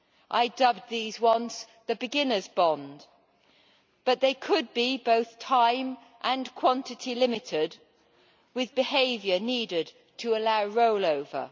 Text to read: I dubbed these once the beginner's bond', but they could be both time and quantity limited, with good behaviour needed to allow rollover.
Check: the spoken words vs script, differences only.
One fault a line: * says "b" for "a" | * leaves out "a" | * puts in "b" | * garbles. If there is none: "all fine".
* leaves out "good"